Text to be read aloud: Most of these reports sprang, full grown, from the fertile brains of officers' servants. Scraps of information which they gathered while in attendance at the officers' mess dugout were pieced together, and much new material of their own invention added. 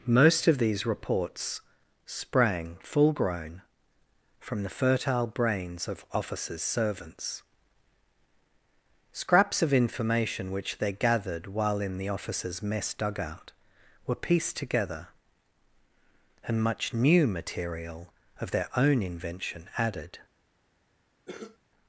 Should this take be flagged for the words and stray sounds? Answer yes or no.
yes